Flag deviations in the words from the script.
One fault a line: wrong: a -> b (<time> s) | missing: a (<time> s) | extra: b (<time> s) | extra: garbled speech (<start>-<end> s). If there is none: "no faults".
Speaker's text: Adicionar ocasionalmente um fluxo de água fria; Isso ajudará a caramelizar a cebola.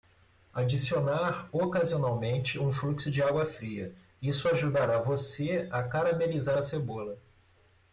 extra: você (5.0 s)